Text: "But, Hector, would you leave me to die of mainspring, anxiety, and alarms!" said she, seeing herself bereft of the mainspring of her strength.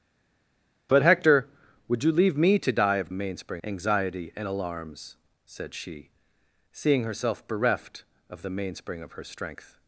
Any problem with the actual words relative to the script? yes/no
no